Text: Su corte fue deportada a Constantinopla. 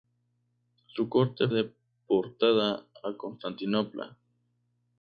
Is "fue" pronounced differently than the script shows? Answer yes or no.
yes